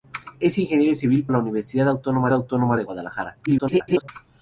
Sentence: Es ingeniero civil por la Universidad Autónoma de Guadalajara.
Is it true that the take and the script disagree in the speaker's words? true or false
true